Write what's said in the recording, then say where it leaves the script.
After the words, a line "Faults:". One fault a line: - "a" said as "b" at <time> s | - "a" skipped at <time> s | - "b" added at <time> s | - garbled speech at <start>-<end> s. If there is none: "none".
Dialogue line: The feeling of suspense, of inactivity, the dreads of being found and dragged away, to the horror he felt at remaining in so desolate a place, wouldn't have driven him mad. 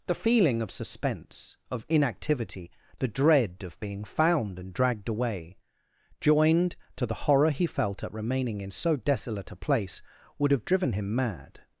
The feeling of suspense, of inactivity, the dread of being found and dragged away, joined to the horror he felt at remaining in so desolate a place, would have driven him mad.
Faults:
- "dreads" said as "dread" at 3.1 s
- "joined" added at 6.2 s
- "wouldn't" said as "would" at 10.4 s